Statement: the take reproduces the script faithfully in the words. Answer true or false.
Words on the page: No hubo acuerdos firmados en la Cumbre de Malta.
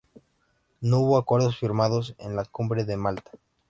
true